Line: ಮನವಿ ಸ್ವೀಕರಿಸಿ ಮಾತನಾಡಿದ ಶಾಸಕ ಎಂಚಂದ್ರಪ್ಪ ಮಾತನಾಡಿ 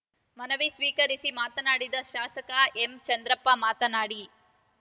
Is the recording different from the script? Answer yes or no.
no